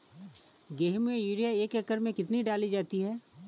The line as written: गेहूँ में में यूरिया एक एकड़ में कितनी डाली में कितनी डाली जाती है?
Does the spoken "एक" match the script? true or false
true